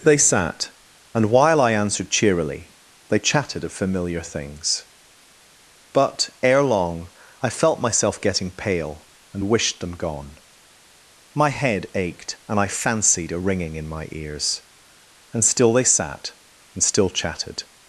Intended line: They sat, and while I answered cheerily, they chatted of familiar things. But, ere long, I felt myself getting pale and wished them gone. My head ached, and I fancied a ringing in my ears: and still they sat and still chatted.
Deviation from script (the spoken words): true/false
false